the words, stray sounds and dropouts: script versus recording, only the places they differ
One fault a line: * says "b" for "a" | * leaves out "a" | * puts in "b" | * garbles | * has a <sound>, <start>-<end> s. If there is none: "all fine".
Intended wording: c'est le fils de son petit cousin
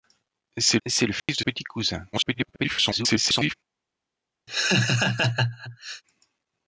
* puts in "c'est"
* has a dropout, 1.2-1.3 s
* leaves out "son"
* garbles
* has a laugh, 4.5-6.0 s